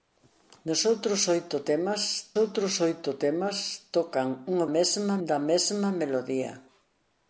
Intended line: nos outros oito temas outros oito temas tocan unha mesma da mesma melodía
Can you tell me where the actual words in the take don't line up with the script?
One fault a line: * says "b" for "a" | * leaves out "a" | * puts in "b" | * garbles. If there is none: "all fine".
all fine